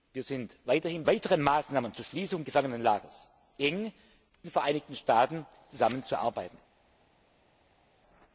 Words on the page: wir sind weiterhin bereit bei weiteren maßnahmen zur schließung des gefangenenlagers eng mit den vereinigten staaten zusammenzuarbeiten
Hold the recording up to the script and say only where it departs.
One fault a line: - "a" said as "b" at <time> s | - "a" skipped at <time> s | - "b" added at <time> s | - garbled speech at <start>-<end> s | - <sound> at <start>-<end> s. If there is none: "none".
- "bereit bei" skipped at 1.0 s
- "des" skipped at 2.4 s
- "mit" skipped at 3.9 s